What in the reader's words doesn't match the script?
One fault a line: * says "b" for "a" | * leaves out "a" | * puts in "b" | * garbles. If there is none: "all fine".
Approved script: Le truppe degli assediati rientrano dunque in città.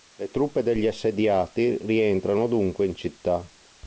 all fine